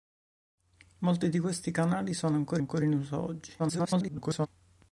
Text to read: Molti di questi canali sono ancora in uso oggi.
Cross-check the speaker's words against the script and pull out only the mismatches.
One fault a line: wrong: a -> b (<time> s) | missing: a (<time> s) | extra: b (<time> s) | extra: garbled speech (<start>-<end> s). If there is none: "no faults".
extra: ancora (2.6 s)
extra: garbled speech (3.6-4.5 s)